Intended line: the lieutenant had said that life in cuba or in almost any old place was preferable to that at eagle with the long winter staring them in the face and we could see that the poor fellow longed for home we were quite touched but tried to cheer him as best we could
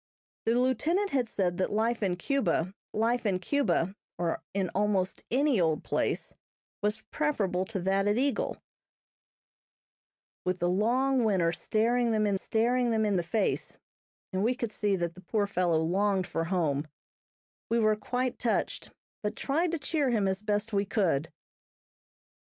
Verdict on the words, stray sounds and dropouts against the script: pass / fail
fail